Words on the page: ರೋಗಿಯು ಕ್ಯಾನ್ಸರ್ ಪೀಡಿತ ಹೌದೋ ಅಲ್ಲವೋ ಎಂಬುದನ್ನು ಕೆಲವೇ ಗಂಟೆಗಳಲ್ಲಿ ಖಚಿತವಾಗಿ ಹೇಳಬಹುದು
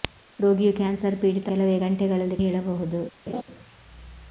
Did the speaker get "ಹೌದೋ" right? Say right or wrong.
wrong